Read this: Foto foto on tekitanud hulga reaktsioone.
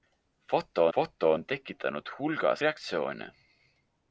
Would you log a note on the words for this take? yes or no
no